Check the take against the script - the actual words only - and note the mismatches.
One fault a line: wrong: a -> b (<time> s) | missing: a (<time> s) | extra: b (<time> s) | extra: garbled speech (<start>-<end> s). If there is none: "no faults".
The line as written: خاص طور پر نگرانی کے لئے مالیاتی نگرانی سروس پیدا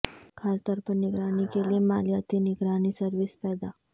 no faults